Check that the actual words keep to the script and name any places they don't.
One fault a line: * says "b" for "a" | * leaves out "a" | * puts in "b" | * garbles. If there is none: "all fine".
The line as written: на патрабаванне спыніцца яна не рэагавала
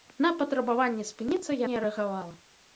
* leaves out "яна"